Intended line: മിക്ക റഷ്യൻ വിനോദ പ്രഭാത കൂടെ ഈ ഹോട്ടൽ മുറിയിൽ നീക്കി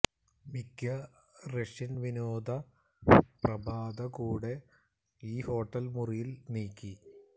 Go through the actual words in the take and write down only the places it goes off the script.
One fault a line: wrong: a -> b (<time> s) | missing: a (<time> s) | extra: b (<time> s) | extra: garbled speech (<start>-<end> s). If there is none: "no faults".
no faults